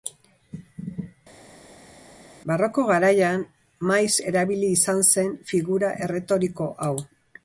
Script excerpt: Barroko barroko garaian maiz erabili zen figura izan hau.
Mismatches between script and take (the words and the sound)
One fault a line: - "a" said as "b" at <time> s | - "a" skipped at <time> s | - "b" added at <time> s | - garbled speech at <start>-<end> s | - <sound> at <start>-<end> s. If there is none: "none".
- "barroko" skipped at 2.8 s
- "izan" added at 4.7 s
- "izan" said as "erretoriko" at 6.1 s